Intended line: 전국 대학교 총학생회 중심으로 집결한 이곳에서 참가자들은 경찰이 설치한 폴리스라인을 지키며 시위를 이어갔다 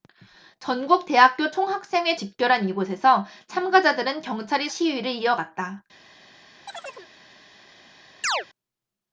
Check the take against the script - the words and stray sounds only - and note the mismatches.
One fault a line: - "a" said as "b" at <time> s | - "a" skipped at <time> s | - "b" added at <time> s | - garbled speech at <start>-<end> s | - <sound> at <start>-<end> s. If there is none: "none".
- "중심으로" skipped at 2.1 s
- "설치한 폴리스라인을 지키며" skipped at 4.7 s
- chirp at 6.7-7.1 s
- chirp at 8.2-8.5 s